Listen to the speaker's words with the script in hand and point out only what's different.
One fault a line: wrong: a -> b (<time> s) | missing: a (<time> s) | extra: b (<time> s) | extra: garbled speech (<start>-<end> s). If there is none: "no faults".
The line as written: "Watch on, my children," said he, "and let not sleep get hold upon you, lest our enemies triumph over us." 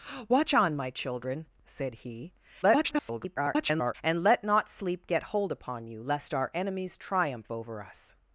extra: garbled speech (2.6-3.9 s)